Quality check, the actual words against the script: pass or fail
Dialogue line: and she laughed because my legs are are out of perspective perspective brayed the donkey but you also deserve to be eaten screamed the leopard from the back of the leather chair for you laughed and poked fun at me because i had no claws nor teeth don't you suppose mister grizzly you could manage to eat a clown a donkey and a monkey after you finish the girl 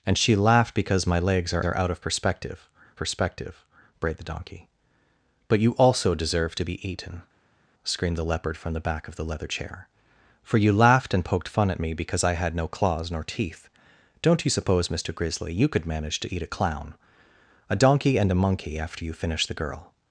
pass